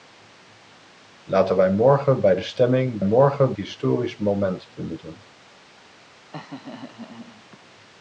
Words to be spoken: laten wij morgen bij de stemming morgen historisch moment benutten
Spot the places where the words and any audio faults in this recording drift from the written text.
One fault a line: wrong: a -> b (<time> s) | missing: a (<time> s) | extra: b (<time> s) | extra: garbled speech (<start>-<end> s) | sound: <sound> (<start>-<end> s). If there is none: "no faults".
sound: laugh (6.3-7.6 s)